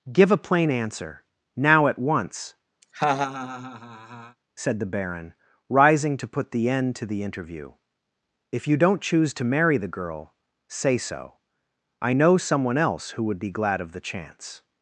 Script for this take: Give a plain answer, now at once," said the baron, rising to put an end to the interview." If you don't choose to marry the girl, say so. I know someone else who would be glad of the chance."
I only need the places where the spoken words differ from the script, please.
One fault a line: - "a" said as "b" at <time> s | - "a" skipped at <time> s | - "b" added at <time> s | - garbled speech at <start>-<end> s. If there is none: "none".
- "an" said as "the" at 6.5 s